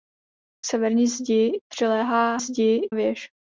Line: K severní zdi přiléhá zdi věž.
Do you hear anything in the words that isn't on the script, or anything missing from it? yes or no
no